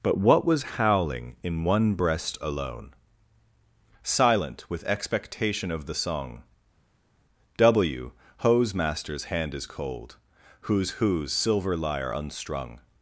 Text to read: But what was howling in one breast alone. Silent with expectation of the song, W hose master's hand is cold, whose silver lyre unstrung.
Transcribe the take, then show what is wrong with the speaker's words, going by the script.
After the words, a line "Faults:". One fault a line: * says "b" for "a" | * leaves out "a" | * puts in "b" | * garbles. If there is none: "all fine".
But what was howling in one breast alone. Silent with expectation of the song, W hose master's hand is cold, whose whose silver lyre unstrung.
Faults:
* puts in "whose"